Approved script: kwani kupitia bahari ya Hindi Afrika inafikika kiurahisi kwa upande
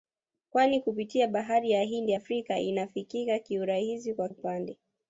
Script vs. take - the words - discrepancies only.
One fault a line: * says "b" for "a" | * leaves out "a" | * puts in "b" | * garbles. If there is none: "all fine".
all fine